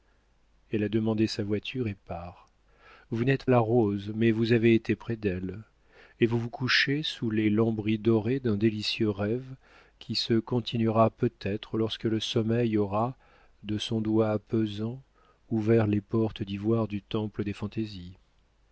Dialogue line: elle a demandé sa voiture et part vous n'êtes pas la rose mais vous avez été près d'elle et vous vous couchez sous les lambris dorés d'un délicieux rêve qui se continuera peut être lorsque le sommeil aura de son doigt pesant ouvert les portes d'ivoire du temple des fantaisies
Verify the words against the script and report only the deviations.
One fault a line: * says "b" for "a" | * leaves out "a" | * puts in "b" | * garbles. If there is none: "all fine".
* leaves out "pas"